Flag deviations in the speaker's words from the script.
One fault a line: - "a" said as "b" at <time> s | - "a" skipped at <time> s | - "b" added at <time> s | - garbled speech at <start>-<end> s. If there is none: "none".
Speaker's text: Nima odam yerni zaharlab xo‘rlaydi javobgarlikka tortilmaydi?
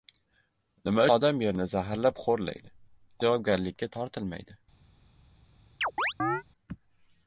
none